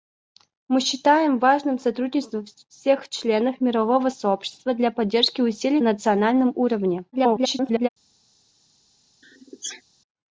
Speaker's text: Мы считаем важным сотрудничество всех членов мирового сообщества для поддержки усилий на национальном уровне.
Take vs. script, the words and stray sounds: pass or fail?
fail